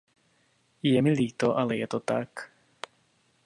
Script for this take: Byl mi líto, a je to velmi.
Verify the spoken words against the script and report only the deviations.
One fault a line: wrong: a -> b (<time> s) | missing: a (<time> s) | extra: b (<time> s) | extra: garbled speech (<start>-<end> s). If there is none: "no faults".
wrong: Byl -> Je (0.8 s)
wrong: a -> ale (1.6 s)
wrong: velmi -> tak (2.0 s)